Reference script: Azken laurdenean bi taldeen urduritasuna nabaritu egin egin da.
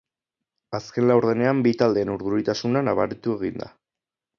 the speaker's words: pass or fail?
fail